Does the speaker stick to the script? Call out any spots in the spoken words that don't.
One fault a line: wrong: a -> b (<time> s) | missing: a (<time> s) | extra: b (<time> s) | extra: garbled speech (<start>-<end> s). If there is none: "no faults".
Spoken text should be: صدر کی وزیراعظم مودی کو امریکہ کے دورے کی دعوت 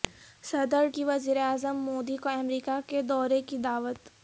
no faults